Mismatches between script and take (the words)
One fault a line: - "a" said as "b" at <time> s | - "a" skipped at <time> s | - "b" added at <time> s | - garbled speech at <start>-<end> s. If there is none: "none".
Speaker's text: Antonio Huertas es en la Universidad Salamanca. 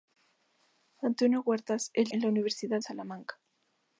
none